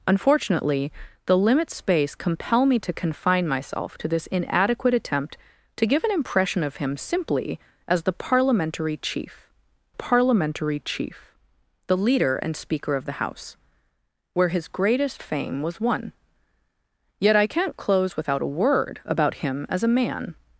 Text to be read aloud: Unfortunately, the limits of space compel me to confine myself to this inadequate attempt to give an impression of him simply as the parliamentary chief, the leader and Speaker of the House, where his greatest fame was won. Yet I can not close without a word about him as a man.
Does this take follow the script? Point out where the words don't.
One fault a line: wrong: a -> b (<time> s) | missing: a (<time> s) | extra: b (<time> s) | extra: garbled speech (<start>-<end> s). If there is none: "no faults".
missing: of (1.8 s)
extra: parliamentary chief (9.9 s)